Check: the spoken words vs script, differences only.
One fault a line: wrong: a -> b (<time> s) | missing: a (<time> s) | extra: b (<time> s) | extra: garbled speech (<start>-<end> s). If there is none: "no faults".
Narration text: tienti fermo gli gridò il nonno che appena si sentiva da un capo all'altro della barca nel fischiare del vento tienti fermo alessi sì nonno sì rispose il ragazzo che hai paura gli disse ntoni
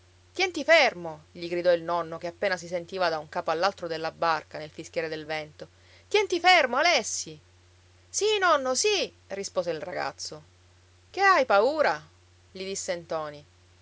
no faults